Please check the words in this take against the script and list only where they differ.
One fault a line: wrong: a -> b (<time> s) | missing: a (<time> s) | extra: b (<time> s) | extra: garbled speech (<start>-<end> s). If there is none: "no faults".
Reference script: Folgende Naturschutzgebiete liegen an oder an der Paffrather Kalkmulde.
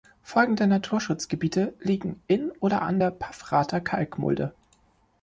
wrong: an -> in (2.2 s)